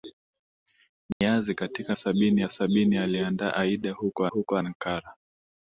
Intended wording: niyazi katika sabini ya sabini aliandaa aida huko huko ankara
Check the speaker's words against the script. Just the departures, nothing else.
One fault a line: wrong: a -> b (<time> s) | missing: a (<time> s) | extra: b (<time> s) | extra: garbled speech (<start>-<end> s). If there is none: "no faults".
no faults